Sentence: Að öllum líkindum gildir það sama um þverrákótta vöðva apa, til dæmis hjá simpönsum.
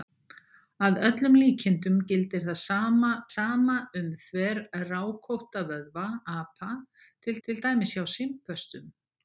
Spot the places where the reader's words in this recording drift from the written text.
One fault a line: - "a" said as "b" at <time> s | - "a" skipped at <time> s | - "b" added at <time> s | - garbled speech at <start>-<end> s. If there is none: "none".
- "sama" added at 3.3 s
- "til" added at 7.5 s